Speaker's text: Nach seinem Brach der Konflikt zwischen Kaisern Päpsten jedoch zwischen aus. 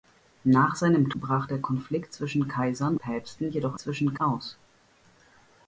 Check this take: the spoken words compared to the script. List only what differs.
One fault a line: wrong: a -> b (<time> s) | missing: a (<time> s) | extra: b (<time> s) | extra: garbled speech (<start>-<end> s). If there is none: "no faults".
no faults